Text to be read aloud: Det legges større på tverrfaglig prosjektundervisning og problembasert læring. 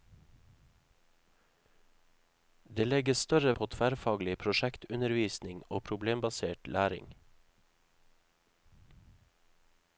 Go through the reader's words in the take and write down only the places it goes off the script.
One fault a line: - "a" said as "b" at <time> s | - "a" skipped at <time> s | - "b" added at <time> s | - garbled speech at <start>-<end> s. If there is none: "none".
none